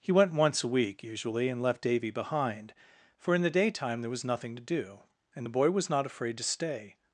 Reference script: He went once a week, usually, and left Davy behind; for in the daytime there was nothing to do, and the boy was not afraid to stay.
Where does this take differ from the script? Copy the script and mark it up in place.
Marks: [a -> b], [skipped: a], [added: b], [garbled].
He went once a week, usually, and left Davy behind; for in the daytime there was nothing to do, and the boy was not afraid to stay.